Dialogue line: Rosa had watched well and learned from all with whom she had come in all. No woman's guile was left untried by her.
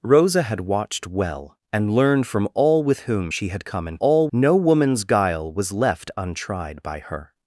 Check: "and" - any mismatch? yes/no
no